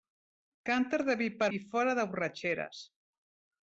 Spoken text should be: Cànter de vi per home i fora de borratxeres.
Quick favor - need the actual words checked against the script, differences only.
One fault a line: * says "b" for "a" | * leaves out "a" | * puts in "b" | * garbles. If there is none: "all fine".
* leaves out "home"